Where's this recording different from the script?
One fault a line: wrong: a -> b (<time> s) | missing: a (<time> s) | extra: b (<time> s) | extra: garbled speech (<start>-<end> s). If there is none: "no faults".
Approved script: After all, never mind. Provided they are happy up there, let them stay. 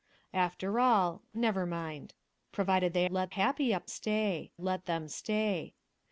wrong: are -> let (3.0 s)
wrong: there -> stay (3.9 s)